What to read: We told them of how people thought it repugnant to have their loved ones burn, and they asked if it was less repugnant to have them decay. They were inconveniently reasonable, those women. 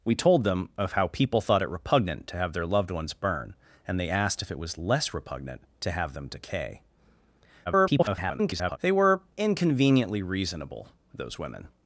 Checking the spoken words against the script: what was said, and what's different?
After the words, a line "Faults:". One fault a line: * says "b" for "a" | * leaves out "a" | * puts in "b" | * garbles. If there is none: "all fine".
We told them of how people thought it repugnant to have their loved ones burn, and they asked if it was less repugnant to have them decay. [garbled] They were inconveniently reasonable, those women.
Faults:
* garbles